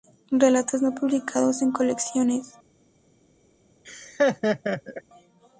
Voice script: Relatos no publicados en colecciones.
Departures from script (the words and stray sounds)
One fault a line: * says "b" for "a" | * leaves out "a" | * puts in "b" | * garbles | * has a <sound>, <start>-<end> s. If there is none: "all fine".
* has a laugh, 3.8-5.0 s